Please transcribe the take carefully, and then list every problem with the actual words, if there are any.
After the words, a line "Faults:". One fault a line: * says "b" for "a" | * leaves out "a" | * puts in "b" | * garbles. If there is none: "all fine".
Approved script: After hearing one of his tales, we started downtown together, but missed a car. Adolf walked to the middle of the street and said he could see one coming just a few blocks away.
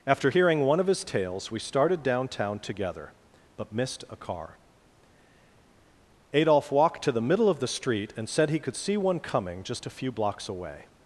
After hearing one of his tales, we started downtown together, but missed a car. Adolf walked to the middle of the street and said he could see one coming just a few blocks away.
Faults:
all fine